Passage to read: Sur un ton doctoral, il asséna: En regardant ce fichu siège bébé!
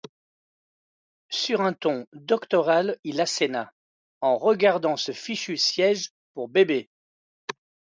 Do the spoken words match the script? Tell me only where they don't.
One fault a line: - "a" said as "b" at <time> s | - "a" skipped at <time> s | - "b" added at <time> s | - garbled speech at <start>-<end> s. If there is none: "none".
- "pour" added at 6.3 s